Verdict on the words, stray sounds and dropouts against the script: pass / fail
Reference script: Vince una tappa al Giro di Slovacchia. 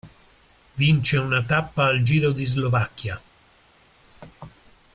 pass